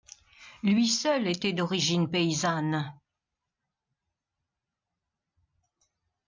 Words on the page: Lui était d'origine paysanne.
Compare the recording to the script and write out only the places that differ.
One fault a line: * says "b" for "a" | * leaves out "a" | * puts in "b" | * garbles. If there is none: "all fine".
* puts in "seul"